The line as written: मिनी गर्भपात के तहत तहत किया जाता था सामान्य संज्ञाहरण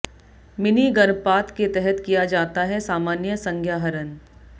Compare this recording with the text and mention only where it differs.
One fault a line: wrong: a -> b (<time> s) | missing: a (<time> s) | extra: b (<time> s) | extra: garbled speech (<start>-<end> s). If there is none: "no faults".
missing: तहत (2.0 s)
wrong: था -> है (2.6 s)